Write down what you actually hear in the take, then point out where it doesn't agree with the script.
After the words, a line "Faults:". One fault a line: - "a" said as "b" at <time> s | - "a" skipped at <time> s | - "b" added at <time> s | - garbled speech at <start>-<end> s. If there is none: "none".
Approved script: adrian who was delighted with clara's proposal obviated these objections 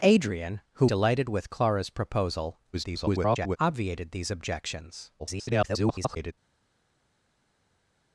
adrian who delighted with clara's proposal [garbled] obviated these objections [garbled]
Faults:
- "was" skipped at 0.9 s
- garbled speech at 2.7-3.6 s
- garbled speech at 5.2-6.3 s